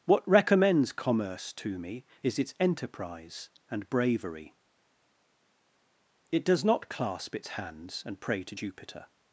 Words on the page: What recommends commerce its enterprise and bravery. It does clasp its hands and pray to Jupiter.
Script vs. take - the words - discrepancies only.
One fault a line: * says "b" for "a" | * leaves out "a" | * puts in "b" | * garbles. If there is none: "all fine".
* puts in "to me is"
* puts in "not"